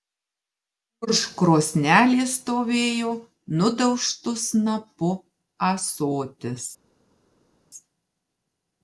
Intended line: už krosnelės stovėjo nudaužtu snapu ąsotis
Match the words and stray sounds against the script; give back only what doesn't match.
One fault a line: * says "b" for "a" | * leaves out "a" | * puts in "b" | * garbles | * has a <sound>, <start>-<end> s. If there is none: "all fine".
all fine